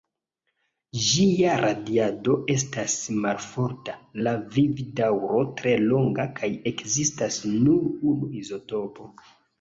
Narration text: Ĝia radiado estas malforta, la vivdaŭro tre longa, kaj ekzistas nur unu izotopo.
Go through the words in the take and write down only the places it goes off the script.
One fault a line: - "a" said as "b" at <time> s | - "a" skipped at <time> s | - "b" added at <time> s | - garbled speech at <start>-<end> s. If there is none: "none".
none